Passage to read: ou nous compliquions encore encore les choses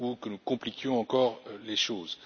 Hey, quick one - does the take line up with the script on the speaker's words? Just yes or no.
no